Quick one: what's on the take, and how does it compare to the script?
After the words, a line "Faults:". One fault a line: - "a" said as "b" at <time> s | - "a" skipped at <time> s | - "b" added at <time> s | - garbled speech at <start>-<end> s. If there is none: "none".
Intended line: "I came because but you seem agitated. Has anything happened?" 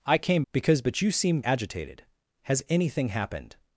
"I came because but you seem agitated. Has anything happened?"
Faults:
none